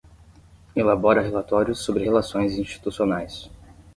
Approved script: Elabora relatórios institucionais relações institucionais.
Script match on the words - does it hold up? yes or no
no